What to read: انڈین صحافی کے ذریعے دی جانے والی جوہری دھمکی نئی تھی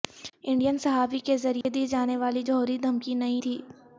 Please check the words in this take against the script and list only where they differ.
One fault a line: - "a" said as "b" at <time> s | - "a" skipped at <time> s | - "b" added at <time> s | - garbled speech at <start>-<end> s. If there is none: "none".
none